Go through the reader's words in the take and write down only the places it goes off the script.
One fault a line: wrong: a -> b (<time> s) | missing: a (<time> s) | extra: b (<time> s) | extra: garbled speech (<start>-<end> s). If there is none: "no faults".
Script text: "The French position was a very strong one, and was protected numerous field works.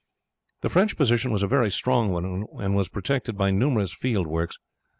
extra: by (3.4 s)